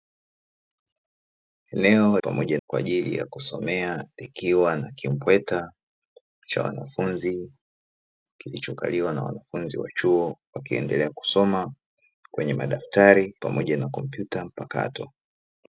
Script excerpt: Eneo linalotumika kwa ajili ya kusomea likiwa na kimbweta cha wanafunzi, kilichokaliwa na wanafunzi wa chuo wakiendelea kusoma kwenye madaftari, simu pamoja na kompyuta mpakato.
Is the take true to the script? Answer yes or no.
no